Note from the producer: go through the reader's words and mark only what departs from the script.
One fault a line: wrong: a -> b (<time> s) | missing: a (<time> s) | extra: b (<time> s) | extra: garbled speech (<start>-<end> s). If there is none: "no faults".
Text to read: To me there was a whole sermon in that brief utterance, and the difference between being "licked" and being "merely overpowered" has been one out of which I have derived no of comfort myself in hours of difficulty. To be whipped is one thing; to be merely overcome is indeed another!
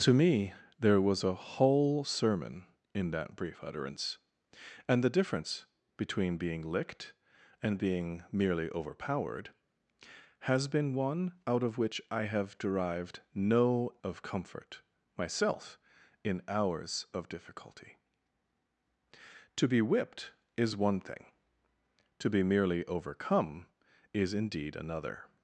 no faults